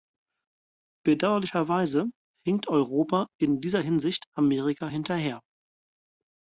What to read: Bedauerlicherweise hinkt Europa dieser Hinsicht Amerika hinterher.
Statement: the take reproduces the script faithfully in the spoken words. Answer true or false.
false